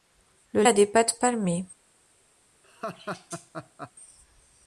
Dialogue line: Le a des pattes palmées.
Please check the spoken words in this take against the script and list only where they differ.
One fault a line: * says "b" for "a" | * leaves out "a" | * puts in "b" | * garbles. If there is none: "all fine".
all fine